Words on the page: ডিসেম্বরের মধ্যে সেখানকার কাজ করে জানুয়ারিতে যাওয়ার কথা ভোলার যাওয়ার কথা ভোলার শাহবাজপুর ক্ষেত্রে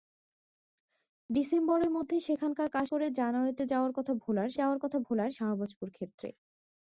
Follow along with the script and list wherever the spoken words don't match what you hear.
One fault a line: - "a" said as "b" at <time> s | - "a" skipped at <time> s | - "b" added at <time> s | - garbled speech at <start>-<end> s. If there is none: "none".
none